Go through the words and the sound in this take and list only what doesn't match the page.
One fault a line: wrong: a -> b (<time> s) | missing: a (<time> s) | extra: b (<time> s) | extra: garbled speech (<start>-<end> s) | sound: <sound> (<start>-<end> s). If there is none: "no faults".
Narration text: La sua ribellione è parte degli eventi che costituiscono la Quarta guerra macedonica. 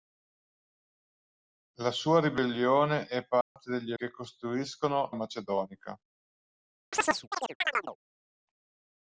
sound: dropout (3.4-3.6 s)
missing: eventi (3.9 s)
missing: la Quarta guerra (5.1 s)
sound: chirp (6.9-8.0 s)